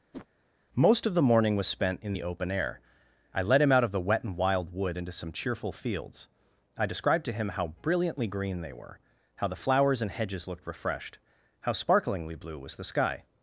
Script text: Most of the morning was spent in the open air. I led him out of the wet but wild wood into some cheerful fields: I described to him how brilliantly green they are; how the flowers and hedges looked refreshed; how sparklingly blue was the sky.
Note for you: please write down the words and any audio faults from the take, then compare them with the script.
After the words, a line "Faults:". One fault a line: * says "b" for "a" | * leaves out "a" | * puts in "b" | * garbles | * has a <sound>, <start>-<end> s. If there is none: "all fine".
Most of the morning was spent in the open air. I led him out of the wet and wild wood into some cheerful fields: I described to him how brilliantly green they were; how the flowers and hedges looked refreshed; how sparklingly blue was the sky.
Faults:
* has a whoosh, 0.1-0.3 s
* says "and" for "but"
* says "were" for "are"